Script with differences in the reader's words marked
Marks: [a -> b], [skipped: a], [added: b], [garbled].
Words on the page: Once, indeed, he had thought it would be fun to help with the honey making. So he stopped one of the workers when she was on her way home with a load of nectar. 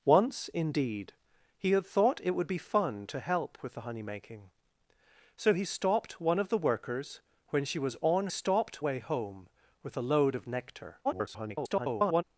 Once, indeed, he had thought it would be fun to help with the honey making. So he stopped one of the workers when she was on [her -> stopped] way home with a load of nectar. [garbled]